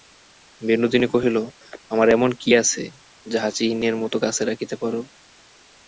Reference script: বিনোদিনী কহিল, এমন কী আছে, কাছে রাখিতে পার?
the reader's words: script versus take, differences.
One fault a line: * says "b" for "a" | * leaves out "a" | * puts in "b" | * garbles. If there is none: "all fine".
* puts in "আমার"
* puts in "যাহা চিহ্নের মতো"